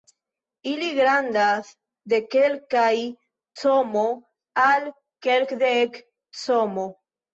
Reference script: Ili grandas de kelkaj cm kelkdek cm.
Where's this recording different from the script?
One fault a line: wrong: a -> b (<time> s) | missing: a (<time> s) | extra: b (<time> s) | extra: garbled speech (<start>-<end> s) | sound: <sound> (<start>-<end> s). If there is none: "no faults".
extra: al (4.7 s)